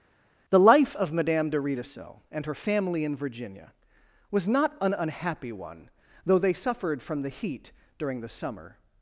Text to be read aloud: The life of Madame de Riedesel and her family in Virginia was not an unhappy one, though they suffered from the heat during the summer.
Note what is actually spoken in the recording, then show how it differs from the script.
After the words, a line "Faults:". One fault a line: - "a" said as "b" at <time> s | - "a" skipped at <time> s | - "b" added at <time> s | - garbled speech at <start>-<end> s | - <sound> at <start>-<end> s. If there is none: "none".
The life of Madame de Riedesel and her family in Virginia was not an unhappy one, though they suffered from the heat during the summer.
Faults:
none